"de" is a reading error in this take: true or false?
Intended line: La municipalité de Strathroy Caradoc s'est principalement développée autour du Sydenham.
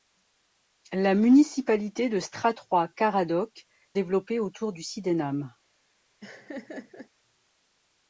false